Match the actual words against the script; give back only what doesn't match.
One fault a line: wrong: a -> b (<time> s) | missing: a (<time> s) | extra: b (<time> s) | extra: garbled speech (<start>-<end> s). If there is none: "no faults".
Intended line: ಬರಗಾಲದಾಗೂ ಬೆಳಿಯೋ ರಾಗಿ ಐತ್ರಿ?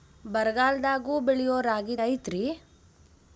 no faults